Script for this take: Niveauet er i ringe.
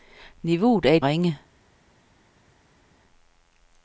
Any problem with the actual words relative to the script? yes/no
no